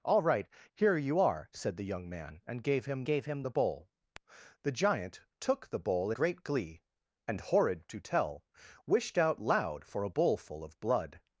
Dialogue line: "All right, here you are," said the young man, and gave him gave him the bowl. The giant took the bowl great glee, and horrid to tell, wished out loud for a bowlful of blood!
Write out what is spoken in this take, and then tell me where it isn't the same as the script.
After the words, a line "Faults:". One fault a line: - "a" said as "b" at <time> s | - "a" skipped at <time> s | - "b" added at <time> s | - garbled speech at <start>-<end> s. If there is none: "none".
"All right, here you are," said the young man, and gave him gave him the bowl. The giant took the bowl great glee, and horrid to tell, wished out loud for a bowlful of blood!
Faults:
none